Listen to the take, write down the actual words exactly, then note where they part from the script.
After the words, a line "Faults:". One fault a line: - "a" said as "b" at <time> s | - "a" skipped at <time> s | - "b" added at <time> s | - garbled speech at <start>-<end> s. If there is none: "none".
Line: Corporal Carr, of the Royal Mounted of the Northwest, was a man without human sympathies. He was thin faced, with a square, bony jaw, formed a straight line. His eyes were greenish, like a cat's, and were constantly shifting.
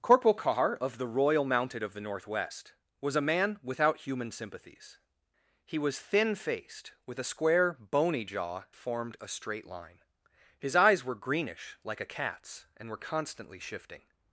Corporal Carr, of the Royal Mounted of the Northwest, was a man without human sympathies. He was thin faced, with a square, bony jaw, formed a straight line. His eyes were greenish, like a cat's, and were constantly shifting.
Faults:
none